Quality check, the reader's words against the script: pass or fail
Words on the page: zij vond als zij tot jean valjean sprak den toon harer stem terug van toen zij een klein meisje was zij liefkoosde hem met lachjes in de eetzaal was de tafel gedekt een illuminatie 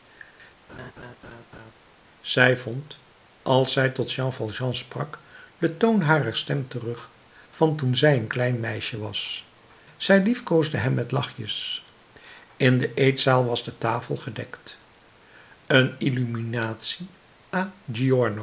pass